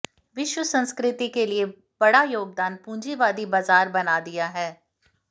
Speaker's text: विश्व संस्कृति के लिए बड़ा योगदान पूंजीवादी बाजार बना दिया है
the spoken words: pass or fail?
pass